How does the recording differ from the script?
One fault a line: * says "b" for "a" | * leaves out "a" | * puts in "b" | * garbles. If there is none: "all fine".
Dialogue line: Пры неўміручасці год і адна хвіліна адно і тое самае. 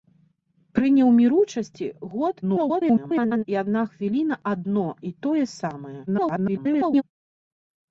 * garbles
* garbles